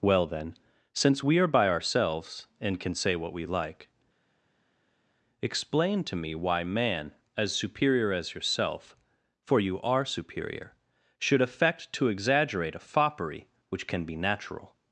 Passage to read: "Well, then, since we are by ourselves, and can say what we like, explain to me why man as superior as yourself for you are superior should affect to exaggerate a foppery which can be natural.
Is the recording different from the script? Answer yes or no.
no